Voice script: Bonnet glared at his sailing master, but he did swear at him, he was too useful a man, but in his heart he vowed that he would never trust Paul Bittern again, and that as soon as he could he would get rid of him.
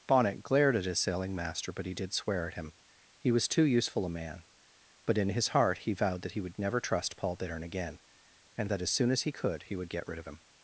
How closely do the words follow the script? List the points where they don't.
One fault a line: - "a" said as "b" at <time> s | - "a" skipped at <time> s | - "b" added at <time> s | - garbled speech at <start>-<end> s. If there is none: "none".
none